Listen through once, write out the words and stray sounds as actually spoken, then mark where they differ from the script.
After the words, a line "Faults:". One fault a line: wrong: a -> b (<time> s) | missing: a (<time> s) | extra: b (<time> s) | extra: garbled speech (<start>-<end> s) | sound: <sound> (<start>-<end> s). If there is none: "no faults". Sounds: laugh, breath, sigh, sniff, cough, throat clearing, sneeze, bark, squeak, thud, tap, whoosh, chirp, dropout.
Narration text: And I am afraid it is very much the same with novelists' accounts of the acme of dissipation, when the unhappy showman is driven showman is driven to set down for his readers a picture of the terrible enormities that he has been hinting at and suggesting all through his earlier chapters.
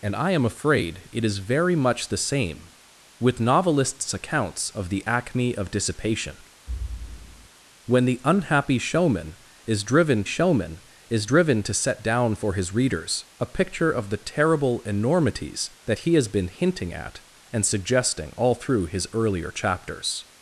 And I am afraid it is very much the same with novelists' accounts of the acme of dissipation, when the unhappy showman is driven showman is driven to set down for his readers a picture of the terrible enormities that he has been hinting at and suggesting all through his earlier chapters.
Faults:
sound: thud (6.7-7.5 s)